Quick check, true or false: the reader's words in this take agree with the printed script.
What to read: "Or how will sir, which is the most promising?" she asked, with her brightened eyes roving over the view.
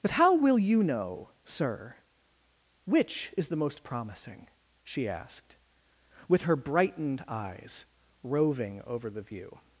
false